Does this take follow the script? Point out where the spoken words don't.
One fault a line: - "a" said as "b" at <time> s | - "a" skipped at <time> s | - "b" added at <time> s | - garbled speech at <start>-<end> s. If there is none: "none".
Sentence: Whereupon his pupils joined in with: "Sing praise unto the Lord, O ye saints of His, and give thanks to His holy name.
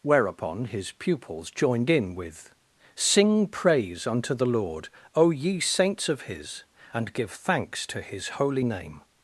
none